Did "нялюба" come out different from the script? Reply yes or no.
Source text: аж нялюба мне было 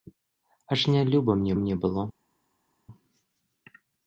no